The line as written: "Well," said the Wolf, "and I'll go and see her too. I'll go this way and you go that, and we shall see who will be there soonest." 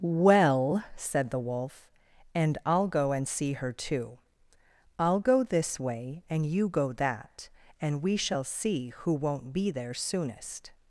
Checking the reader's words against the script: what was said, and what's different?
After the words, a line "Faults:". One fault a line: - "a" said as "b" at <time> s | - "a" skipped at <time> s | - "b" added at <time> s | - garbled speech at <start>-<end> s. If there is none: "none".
"Well," said the Wolf, "and I'll go and see her too. I'll go this way and you go that, and we shall see who won't be there soonest."
Faults:
- "will" said as "won't" at 9.1 s